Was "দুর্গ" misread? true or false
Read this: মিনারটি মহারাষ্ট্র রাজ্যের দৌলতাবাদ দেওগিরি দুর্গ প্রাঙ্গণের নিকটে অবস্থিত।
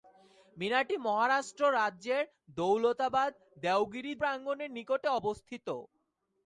true